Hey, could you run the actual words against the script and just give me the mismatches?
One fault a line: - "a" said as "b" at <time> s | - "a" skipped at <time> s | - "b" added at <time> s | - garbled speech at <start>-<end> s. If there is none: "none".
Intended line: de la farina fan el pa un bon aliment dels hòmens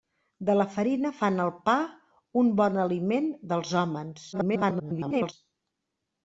- garbled speech at 4.3-5.3 s